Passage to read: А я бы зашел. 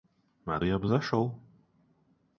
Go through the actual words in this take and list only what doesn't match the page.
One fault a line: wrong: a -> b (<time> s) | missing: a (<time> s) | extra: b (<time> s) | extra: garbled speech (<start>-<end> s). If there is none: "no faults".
no faults